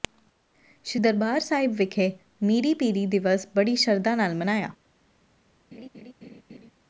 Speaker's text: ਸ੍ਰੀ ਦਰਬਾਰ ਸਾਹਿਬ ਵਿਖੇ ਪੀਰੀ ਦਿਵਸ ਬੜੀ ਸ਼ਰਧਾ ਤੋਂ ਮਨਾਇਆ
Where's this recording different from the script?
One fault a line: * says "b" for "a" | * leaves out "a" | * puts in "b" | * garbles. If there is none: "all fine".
* puts in "ਮੀਰੀ"
* says "ਨਾਲ" for "ਤੋਂ"